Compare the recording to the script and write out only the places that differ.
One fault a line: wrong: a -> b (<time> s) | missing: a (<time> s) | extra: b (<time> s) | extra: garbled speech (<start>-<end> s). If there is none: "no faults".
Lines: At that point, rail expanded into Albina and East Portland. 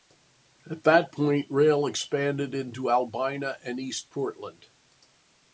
no faults